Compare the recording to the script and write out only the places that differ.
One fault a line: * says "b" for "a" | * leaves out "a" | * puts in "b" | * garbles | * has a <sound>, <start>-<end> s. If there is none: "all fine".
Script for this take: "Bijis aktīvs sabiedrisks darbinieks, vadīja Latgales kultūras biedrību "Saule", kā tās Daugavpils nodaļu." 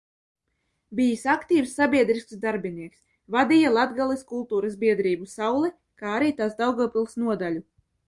* puts in "arī"